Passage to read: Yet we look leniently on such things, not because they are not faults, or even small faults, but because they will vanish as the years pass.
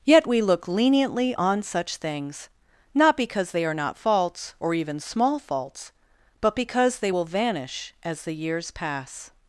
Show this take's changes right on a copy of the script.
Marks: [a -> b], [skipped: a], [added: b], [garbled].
Yet we look leniently on such things, not because they are not faults, or even small faults, but because they will vanish as the years pass.